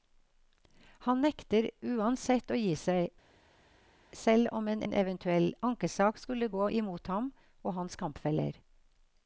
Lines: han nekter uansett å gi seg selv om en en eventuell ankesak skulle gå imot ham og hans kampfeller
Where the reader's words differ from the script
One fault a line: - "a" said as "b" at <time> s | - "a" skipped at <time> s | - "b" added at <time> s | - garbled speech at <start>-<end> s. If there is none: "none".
none